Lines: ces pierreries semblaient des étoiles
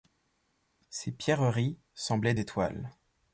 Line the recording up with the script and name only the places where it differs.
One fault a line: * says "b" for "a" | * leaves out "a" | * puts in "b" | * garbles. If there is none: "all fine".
* leaves out "des"